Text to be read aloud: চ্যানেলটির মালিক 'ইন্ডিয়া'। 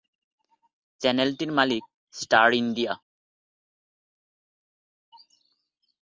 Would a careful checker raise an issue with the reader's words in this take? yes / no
yes